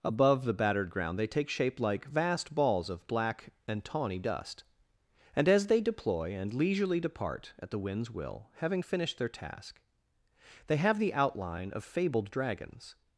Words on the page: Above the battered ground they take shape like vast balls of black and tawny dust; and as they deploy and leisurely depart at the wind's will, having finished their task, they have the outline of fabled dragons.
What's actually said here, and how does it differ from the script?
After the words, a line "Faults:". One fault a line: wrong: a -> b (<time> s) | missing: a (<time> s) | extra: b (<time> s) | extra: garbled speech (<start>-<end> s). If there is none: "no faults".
Above the battered ground they take shape like vast balls of black and tawny dust; and as they deploy and leisurely depart at the wind's will, having finished their task, they have the outline of fabled dragons.
Faults:
no faults